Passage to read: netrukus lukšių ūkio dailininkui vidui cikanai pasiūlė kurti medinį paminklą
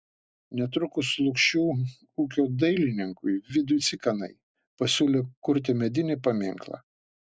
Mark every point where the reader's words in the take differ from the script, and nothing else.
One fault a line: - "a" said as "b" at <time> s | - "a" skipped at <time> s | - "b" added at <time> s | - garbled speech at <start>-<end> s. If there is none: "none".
none